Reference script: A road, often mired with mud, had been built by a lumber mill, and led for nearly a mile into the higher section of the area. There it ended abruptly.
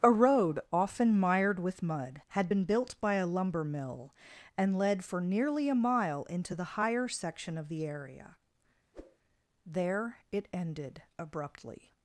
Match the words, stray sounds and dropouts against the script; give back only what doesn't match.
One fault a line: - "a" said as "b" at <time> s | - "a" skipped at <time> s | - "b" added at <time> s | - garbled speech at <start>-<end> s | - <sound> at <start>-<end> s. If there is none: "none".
- whoosh at 8.9-9.2 s